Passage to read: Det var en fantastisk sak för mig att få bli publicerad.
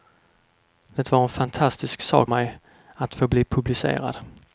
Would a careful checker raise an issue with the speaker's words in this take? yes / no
yes